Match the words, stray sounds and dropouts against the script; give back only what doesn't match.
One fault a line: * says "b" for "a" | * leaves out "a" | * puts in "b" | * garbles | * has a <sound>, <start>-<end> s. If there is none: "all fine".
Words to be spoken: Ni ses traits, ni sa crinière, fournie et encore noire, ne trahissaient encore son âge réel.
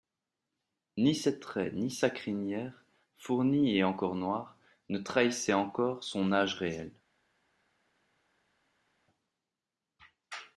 all fine